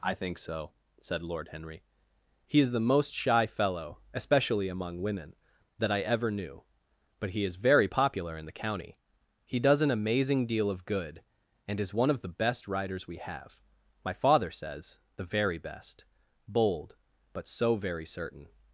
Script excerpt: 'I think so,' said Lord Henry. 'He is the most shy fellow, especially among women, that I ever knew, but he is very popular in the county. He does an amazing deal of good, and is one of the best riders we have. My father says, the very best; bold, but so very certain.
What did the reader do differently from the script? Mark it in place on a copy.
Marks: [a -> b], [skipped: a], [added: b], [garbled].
'I think so,' said Lord Henry. 'He is the most shy fellow, especially among women, that I ever knew, but he is very popular in the county. He does an amazing deal of good, and is one of the best riders we have. My father says, the very best; bold, but so very certain.